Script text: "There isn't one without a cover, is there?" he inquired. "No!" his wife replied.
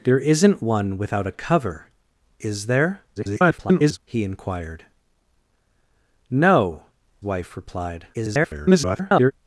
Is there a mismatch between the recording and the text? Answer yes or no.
yes